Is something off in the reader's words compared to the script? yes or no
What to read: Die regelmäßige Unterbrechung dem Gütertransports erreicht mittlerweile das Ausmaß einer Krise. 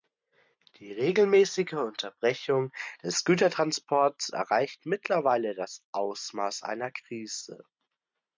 yes